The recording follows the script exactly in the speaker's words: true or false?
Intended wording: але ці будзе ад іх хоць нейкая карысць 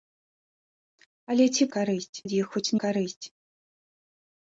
false